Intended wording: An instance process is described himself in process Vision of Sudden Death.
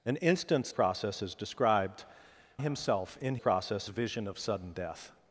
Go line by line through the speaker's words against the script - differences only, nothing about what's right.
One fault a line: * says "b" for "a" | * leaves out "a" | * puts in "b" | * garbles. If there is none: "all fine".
all fine